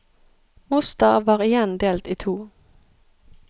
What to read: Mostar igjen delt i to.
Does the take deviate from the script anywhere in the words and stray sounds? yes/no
yes